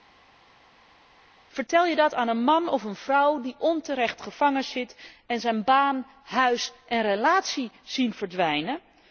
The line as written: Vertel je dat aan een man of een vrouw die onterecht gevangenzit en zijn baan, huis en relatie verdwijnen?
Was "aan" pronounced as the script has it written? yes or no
yes